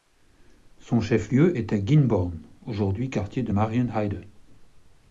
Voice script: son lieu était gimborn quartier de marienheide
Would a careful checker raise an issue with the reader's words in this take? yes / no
yes